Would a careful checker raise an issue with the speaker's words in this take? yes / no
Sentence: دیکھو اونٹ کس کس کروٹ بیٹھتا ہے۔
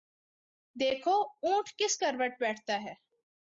yes